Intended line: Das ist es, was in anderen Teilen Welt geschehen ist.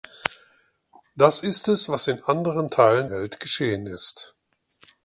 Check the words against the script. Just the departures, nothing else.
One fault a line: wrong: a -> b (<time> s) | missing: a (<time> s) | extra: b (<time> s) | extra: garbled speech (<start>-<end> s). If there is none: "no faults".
no faults